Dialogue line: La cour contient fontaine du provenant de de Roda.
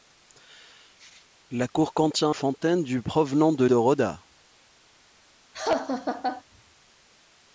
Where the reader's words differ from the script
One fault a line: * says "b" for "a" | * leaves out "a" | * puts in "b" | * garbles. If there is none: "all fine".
all fine